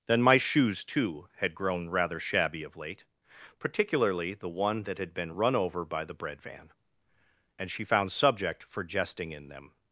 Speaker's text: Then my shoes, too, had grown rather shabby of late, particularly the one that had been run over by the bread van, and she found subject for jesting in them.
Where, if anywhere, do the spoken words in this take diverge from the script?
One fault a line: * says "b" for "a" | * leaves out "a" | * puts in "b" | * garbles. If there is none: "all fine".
all fine